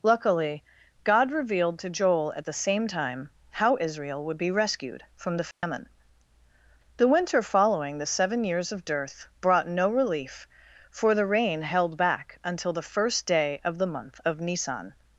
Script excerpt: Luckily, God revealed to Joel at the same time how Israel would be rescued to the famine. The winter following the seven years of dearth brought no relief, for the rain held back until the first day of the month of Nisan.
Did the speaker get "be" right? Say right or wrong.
right